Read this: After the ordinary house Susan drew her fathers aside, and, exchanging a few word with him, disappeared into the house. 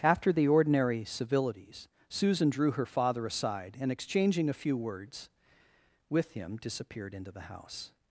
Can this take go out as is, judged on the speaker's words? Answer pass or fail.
fail